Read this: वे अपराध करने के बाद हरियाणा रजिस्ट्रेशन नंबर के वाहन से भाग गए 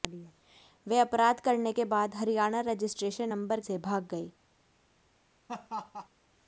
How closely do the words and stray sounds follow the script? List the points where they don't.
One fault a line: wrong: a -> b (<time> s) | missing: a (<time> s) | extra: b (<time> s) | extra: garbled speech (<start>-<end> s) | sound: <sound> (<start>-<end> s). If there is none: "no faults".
missing: के वाहन (3.6 s)
sound: laugh (5.5-6.1 s)